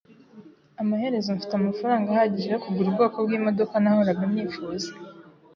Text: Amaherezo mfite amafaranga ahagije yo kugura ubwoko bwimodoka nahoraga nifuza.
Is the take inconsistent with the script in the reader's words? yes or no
no